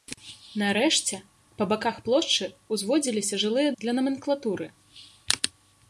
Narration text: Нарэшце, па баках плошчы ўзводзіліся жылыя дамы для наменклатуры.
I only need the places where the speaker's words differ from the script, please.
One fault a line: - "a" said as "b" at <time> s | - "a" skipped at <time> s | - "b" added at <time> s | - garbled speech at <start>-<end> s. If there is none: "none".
- "дамы" skipped at 3.7 s